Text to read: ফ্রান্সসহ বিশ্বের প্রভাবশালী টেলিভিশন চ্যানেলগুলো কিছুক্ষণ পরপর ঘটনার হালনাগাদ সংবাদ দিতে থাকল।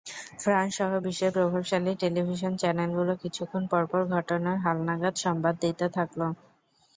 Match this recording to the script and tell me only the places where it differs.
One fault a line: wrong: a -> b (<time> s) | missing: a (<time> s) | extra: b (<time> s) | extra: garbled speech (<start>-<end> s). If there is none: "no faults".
no faults